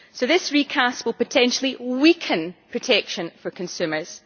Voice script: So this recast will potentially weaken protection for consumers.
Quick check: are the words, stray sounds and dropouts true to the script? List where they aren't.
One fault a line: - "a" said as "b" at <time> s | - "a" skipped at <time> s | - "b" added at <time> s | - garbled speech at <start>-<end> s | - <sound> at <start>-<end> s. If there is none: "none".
none